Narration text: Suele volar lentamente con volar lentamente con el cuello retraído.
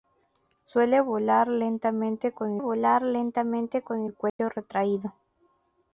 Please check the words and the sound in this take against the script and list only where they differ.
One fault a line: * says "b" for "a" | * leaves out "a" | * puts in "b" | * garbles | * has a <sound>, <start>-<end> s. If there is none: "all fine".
* has a dropout, 4.3-4.4 s